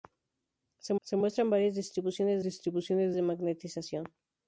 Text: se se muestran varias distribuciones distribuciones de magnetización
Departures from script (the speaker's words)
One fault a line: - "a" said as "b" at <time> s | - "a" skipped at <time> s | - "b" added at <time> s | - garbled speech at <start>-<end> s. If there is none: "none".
none